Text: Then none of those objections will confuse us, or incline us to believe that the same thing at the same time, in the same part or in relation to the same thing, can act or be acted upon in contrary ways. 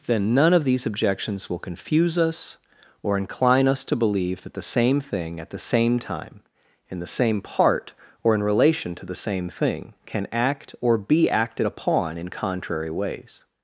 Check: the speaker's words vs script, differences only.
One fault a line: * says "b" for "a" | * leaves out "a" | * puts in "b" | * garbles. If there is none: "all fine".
* says "these" for "those"